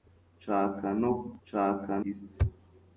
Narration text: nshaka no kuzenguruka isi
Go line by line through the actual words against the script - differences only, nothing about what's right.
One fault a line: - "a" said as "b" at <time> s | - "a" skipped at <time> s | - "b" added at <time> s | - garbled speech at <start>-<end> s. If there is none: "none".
- "kuzenguruka" said as "nshaka" at 1.4 s